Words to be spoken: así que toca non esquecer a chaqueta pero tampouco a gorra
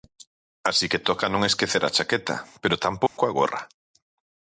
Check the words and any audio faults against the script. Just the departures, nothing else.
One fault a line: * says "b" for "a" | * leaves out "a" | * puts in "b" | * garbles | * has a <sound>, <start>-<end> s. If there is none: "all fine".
* has a dropout, 3.1-3.2 s